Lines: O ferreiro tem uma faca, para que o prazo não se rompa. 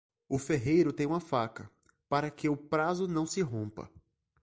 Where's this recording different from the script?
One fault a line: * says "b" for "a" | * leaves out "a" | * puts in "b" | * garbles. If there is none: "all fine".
all fine